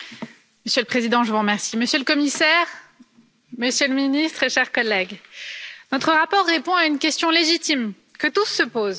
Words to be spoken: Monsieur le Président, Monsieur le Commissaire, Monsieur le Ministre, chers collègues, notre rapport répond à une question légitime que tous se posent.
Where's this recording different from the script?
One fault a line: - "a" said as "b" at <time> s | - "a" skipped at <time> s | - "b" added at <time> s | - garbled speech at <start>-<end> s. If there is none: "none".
none